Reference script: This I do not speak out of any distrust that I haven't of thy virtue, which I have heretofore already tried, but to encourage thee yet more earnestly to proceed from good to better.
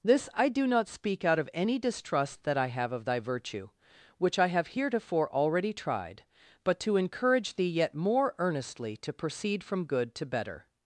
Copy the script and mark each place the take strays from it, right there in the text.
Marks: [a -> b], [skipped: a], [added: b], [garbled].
This I do not speak out of any distrust that I [haven't -> have] of thy virtue, which I have heretofore already tried, but to encourage thee yet more earnestly to proceed from good to better.